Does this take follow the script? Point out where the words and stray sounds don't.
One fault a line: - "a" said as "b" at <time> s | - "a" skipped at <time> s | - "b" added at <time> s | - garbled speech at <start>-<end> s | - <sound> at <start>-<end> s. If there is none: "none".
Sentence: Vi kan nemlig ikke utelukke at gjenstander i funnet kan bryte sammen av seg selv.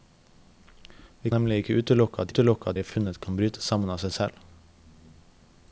- "kan" skipped at 1.3 s
- "gjenstander" said as "utelukke" at 2.3 s